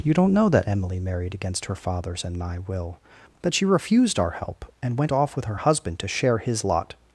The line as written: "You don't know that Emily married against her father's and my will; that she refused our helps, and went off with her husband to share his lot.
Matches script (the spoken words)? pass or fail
fail